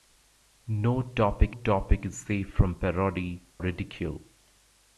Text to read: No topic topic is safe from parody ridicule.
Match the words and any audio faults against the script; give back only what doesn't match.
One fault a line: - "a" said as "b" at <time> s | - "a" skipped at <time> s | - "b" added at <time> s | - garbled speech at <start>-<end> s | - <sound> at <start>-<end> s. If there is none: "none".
none